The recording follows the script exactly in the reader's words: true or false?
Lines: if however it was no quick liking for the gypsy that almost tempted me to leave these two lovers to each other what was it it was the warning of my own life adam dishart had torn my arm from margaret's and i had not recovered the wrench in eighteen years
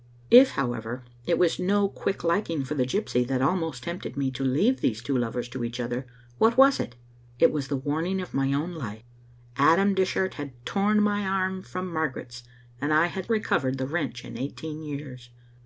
false